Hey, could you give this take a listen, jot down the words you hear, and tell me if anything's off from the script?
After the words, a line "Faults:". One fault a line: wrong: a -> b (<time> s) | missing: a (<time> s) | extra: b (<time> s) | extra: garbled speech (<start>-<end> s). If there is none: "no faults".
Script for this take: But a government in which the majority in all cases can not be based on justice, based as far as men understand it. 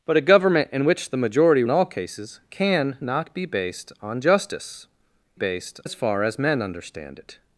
But a government in which the majority in all cases can not be based on justice, based as far as men understand it.
Faults:
no faults